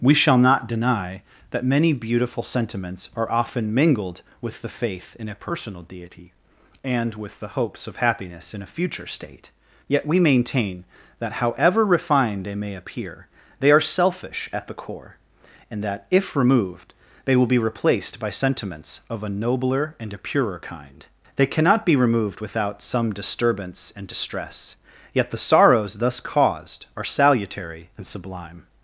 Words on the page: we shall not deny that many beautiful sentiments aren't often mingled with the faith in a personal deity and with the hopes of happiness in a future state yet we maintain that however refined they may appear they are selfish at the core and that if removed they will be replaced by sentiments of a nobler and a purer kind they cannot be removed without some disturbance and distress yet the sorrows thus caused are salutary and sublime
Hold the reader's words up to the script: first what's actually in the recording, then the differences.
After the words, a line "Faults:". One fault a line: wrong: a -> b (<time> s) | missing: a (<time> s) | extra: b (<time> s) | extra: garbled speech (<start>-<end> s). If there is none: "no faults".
we shall not deny that many beautiful sentiments are often mingled with the faith in a personal deity and with the hopes of happiness in a future state yet we maintain that however refined they may appear they are selfish at the core and that if removed they will be replaced by sentiments of a nobler and a purer kind they cannot be removed without some disturbance and distress yet the sorrows thus caused are salutary and sublime
Faults:
wrong: aren't -> are (3.1 s)